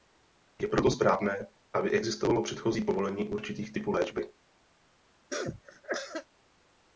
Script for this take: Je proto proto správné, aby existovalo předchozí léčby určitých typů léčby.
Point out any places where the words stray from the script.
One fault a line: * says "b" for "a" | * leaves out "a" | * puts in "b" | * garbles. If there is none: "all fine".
* leaves out "proto"
* says "povolení" for "léčby"